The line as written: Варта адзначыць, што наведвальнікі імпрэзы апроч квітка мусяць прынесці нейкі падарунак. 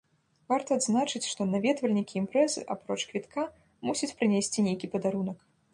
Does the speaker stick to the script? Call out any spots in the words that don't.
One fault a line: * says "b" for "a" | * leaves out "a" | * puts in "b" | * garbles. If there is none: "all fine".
all fine